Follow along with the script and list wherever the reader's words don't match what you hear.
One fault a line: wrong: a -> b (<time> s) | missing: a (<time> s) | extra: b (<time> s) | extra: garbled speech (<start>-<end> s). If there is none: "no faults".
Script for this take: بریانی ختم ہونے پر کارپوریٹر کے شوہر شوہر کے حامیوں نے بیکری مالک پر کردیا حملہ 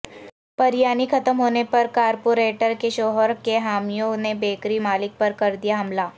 missing: شوہر (3.3 s)